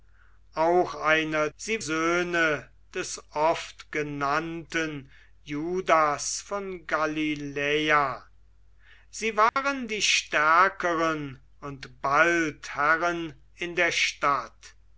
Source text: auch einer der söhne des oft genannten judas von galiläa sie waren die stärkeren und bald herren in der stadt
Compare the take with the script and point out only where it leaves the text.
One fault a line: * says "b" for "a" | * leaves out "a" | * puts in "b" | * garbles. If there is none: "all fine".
* says "sie" for "der"